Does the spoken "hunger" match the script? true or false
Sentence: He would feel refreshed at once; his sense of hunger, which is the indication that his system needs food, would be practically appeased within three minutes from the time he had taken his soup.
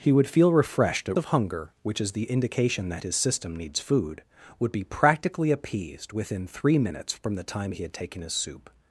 true